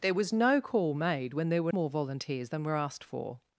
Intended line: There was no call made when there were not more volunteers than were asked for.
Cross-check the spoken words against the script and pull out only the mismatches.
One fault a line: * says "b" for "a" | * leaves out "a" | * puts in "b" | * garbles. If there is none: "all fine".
* leaves out "not"